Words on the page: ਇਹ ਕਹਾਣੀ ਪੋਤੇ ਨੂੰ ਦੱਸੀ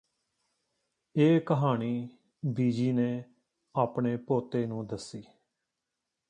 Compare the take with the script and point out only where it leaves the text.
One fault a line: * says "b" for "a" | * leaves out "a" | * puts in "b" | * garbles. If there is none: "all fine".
* puts in "ਬੀਜੀ ਨੇ ਆਪਣੇ"